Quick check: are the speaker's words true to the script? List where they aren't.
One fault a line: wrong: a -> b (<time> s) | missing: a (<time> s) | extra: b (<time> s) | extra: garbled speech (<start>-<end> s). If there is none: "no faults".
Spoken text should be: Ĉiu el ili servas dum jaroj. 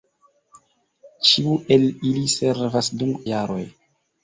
no faults